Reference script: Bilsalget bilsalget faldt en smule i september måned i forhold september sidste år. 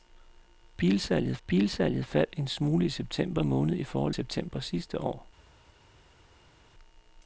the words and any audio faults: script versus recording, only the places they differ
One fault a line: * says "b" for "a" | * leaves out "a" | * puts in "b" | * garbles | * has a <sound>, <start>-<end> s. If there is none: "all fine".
all fine